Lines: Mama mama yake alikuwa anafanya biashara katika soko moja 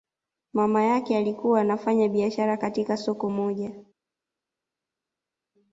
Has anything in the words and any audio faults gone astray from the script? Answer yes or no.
yes